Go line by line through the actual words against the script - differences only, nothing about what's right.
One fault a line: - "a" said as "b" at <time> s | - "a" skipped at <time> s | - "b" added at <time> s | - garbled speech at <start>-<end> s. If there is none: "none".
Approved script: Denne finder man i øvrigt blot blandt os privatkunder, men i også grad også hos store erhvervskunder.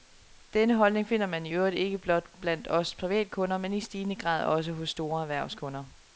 - "holdning" added at 0.8 s
- "ikke" added at 1.7 s
- "også" said as "stigende" at 3.8 s